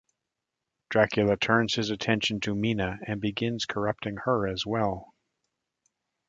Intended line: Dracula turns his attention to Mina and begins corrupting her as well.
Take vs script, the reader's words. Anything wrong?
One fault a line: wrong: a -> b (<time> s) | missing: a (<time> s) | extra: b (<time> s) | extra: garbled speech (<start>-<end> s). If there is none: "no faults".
no faults